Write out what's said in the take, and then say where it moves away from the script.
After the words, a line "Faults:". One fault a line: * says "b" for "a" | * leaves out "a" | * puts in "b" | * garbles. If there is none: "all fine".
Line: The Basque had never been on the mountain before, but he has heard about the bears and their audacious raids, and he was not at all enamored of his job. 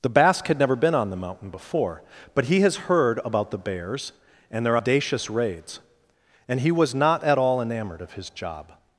The Basque had never been on the mountain before, but he has heard about the bears and their audacious raids, and he was not at all enamored of his job.
Faults:
all fine